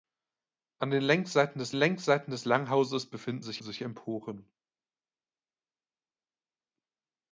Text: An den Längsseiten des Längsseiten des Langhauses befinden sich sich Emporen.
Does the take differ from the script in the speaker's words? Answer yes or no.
no